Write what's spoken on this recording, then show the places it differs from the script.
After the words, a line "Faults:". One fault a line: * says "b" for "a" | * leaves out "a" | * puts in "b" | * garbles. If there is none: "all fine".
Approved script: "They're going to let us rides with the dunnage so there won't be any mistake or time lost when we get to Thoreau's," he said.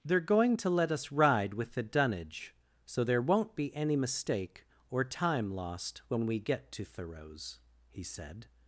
"They're going to let us ride with the dunnage so there won't be any mistake or time lost when we get to Thoreau's," he said.
Faults:
* says "ride" for "rides"